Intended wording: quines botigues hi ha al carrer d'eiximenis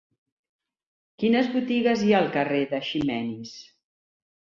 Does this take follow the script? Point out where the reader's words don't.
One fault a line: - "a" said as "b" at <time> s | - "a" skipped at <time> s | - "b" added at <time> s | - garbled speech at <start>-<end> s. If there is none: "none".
none